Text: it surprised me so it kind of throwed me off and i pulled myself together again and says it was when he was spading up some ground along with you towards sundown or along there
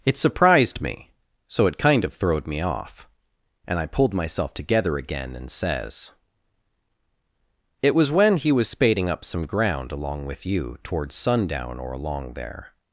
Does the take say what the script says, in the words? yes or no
yes